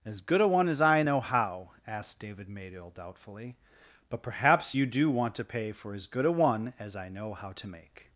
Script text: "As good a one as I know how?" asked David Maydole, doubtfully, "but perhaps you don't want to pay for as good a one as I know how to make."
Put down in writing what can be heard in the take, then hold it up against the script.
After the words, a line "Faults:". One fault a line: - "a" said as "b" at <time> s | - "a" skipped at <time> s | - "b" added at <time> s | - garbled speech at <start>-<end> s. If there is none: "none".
"As good a one as I know how?" asked David Maydole, doubtfully, "but perhaps you do want to pay for as good a one as I know how to make."
Faults:
- "don't" said as "do" at 4.8 s